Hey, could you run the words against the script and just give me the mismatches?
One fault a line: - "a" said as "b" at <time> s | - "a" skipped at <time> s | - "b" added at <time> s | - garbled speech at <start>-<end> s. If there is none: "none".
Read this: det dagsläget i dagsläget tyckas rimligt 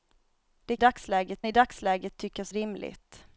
none